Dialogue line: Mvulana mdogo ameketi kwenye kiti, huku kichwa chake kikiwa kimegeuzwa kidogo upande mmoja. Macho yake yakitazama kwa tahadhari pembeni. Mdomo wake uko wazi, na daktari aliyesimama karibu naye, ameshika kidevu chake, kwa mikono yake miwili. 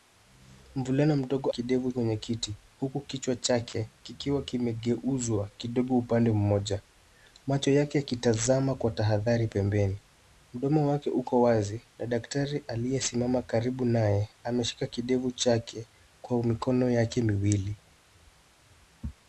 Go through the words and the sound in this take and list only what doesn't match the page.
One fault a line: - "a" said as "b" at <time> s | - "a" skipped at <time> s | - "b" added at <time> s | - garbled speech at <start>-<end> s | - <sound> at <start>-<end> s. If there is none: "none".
- "ameketi" said as "kidevu" at 1.5 s